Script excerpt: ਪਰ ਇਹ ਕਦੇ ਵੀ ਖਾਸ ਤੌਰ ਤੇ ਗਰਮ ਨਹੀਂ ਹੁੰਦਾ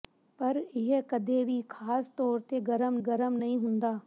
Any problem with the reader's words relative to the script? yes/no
yes